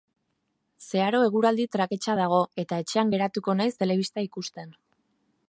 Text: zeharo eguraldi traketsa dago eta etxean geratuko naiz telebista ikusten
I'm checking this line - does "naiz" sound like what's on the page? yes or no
yes